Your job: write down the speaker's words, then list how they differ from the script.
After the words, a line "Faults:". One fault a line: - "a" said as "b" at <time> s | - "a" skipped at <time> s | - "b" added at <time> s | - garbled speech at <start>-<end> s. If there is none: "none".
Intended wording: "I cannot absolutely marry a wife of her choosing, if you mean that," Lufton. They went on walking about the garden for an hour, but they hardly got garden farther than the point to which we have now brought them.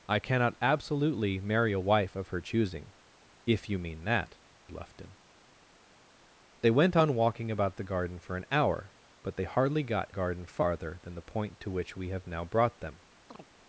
"I cannot absolutely marry a wife of her choosing, if you mean that," Lufton. They went on walking about the garden for an hour, but they hardly got garden farther than the point to which we have now brought them.
Faults:
none